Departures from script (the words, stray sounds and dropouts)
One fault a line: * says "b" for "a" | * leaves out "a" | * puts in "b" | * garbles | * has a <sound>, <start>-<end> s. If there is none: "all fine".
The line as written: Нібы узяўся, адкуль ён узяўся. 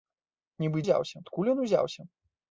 all fine